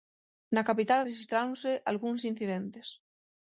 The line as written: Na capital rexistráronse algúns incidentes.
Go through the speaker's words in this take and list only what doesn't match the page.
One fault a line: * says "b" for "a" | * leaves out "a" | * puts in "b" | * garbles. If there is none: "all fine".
all fine